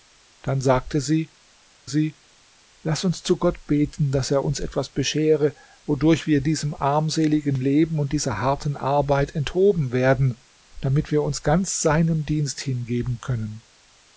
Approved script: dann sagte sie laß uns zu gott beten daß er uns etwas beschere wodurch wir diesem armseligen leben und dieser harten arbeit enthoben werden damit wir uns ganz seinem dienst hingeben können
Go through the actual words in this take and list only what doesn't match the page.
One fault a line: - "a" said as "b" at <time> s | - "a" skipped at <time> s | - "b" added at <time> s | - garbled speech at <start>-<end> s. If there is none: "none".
- "sie" added at 1.8 s